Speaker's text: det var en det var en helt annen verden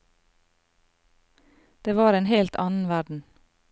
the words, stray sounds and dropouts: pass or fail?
fail